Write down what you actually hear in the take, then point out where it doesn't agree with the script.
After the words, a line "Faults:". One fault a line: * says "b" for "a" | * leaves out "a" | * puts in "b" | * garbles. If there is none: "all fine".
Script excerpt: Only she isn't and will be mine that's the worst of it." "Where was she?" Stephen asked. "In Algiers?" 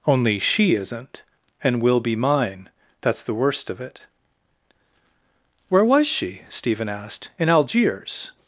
Only she isn't and will be mine that's the worst of it." "Where was she?" Stephen asked. "In Algiers?"
Faults:
all fine